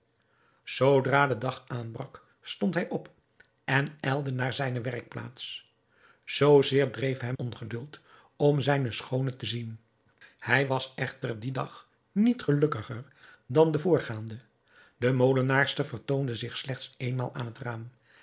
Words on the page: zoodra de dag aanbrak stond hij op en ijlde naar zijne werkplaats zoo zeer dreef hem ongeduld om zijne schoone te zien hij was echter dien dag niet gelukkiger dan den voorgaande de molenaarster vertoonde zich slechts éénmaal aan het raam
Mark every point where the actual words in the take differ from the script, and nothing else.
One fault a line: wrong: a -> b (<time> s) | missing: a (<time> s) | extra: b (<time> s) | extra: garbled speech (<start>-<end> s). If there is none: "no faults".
no faults